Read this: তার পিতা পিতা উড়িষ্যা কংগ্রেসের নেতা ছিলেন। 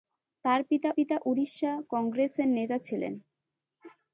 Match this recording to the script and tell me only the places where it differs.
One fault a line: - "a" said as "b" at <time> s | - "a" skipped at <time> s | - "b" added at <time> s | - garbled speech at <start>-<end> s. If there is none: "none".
none